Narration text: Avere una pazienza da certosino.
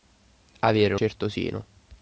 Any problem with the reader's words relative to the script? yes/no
yes